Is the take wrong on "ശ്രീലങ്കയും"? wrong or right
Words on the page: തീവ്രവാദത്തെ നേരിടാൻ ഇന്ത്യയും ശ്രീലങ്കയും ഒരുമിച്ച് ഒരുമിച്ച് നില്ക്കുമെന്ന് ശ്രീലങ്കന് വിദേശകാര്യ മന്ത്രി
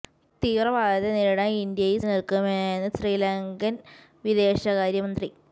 wrong